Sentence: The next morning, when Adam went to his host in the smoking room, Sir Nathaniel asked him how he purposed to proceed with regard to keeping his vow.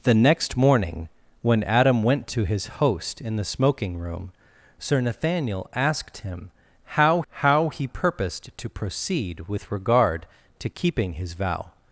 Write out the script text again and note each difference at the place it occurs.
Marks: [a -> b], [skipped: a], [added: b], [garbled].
The next morning, when Adam went to his host in the smoking room, Sir Nathaniel asked him how [added: how] he purposed to proceed with regard to keeping his vow.